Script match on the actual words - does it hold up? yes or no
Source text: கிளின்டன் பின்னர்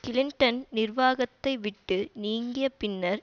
no